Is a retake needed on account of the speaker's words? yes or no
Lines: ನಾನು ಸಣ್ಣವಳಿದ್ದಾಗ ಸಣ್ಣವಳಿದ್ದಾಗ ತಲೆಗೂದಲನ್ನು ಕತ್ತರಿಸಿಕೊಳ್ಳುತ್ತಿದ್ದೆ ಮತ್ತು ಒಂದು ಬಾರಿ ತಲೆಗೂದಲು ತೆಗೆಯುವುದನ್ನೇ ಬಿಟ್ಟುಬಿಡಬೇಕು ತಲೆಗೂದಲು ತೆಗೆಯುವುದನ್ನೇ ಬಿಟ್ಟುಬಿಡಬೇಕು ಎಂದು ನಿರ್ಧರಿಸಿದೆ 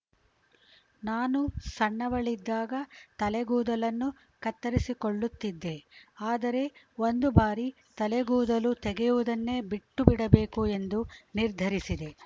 yes